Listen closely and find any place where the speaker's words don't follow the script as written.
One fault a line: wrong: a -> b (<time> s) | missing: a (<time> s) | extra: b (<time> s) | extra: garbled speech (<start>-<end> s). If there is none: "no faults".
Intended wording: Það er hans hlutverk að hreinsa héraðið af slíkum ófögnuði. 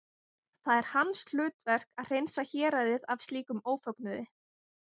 no faults